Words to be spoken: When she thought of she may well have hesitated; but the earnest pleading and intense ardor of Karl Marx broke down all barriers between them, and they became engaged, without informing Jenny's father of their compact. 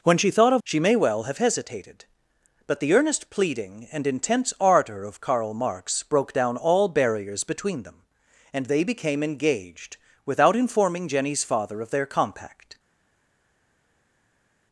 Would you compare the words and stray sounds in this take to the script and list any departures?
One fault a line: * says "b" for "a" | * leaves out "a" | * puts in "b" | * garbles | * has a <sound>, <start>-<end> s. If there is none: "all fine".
all fine